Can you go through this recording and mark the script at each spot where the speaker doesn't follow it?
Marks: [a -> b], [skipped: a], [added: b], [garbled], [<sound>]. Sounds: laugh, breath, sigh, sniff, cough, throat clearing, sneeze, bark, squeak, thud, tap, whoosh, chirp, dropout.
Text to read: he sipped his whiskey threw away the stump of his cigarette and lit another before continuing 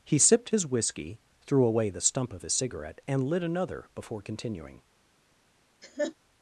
he sipped his whiskey threw away the stump of his cigarette and lit another before continuing [laugh]